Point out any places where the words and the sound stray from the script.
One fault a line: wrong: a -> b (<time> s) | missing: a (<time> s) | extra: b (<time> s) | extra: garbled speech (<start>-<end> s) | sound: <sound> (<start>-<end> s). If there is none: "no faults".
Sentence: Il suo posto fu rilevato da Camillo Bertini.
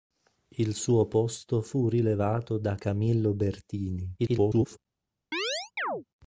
extra: garbled speech (4.2-4.8 s)
sound: chirp (5.3-6.0 s)